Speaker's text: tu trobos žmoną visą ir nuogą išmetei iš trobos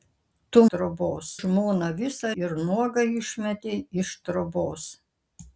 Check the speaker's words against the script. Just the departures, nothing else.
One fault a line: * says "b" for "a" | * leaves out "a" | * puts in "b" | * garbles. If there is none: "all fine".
all fine